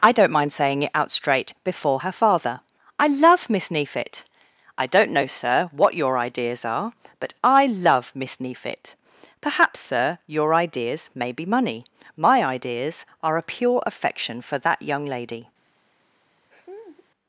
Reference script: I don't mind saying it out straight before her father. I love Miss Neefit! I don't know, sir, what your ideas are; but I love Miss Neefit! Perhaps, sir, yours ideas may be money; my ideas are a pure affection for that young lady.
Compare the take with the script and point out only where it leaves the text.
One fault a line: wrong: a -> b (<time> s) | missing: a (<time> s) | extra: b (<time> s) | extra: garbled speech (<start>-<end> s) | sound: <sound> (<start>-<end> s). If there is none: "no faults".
wrong: yours -> your (10.2 s)
sound: laugh (16.5-17.1 s)